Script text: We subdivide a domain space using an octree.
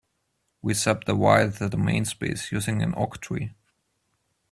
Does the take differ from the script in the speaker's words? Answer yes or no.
yes